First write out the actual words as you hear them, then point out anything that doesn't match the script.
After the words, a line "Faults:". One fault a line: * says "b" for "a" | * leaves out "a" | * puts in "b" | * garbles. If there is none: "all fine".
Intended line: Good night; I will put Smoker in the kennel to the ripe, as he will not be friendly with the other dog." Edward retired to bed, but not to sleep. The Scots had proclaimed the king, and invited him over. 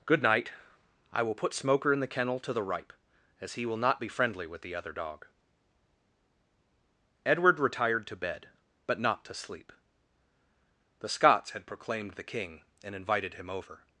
Good night; I will put Smoker in the kennel to the ripe, as he will not be friendly with the other dog." Edward retired to bed, but not to sleep. The Scots had proclaimed the king, and invited him over.
Faults:
all fine